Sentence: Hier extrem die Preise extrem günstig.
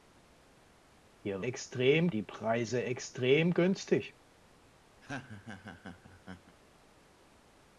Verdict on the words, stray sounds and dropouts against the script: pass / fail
fail